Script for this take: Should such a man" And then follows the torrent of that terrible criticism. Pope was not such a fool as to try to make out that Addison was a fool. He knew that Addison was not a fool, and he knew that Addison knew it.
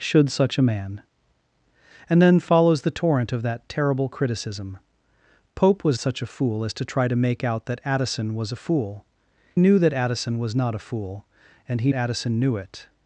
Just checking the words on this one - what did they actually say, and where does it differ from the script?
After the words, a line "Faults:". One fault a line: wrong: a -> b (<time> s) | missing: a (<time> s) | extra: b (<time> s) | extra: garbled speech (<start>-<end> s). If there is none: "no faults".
Should such a man" And then follows the torrent of that terrible criticism. Pope was such a fool as to try to make out that Addison was a fool. Knew that Addison was not a fool, and he Addison knew it.
Faults:
missing: not (6.0 s)
missing: He (9.0 s)
missing: knew that (11.9 s)